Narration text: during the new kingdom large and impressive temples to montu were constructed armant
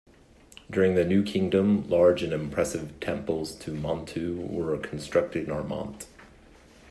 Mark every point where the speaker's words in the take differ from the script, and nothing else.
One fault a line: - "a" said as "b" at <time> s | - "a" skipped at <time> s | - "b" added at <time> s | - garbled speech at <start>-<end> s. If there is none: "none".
none